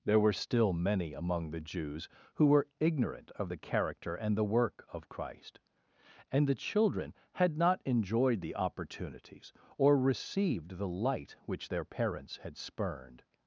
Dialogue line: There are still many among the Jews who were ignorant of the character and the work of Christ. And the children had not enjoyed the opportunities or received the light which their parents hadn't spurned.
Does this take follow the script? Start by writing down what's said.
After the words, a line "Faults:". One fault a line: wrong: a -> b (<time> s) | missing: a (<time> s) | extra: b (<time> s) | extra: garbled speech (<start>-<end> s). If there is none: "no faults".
There were still many among the Jews who were ignorant of the character and the work of Christ. And the children had not enjoyed the opportunities or received the light which their parents had spurned.
Faults:
wrong: are -> were (0.2 s)
wrong: hadn't -> had (12.4 s)